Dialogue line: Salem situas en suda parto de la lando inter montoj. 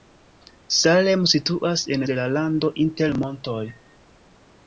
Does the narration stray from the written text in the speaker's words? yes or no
yes